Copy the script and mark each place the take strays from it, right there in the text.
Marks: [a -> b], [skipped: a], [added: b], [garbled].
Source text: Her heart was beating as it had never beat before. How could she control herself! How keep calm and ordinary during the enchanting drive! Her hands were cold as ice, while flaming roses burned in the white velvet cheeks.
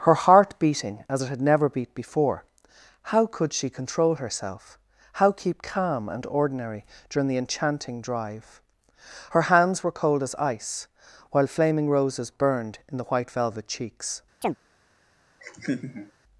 Her heart [skipped: was] beating as it had never beat before. How could she control herself! How keep calm and ordinary during the enchanting drive! Her hands were cold as ice, while flaming roses burned in the white velvet cheeks.